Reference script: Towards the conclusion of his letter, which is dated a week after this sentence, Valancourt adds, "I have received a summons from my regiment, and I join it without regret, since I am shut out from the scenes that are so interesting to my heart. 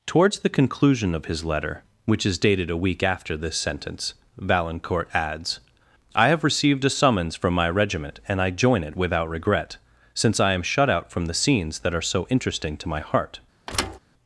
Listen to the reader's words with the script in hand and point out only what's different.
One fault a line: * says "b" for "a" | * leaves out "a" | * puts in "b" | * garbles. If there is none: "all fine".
all fine